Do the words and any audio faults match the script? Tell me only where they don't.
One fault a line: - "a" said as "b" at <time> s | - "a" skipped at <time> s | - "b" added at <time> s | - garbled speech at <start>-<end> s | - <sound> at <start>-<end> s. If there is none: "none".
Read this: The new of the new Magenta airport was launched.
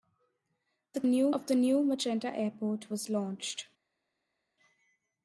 none